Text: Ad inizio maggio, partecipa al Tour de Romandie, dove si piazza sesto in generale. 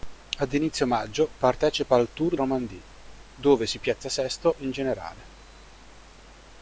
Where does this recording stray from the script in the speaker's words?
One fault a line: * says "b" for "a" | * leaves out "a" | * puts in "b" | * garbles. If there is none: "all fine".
* leaves out "de"